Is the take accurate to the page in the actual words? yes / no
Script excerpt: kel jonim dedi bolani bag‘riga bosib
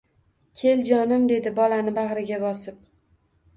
yes